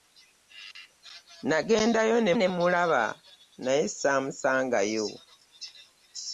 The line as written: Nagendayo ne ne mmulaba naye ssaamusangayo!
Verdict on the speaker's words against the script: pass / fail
pass